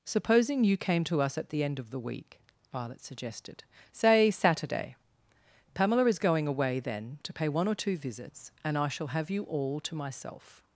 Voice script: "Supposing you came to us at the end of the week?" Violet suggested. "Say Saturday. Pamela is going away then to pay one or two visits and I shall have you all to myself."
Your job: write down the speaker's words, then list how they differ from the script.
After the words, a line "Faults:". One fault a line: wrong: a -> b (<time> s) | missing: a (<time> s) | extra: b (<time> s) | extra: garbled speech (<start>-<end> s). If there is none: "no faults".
"Supposing you came to us at the end of the week?" Violet suggested. "Say Saturday. Pamela is going away then to pay one or two visits and I shall have you all to myself."
Faults:
no faults